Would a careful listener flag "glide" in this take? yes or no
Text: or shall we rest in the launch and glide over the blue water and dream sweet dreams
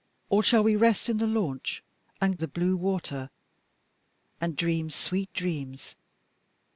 yes